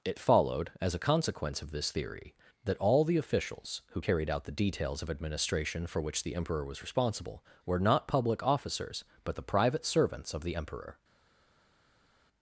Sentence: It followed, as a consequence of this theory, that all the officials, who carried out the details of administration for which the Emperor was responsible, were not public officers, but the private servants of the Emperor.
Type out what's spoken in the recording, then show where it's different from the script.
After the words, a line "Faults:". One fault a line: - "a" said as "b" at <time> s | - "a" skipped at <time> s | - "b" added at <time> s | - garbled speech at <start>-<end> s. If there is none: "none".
It followed, as a consequence of this theory, that all the officials, who carried out the details of administration for which the Emperor was responsible, were not public officers, but the private servants of the Emperor.
Faults:
none